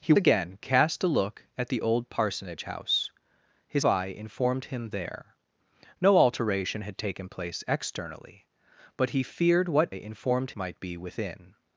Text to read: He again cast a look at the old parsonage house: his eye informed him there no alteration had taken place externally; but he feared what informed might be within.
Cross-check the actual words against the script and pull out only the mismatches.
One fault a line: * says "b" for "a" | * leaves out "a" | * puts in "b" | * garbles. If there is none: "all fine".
all fine